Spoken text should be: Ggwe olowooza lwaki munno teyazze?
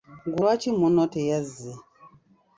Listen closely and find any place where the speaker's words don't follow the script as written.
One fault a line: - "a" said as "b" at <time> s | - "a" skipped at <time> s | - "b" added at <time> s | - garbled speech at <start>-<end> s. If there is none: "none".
- "olowooza" skipped at 0.4 s